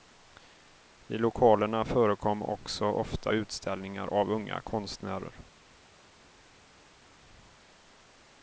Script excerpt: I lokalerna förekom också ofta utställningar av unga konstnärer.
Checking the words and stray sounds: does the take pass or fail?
pass